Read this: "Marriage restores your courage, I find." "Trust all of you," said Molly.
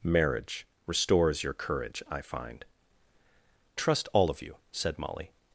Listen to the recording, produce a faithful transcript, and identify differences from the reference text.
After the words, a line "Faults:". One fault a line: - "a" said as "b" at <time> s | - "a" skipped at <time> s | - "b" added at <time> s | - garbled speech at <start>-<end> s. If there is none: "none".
"Marriage restores your courage, I find." "Trust all of you," said Molly.
Faults:
none